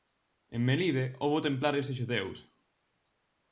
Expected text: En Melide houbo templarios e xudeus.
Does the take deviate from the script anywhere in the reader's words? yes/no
no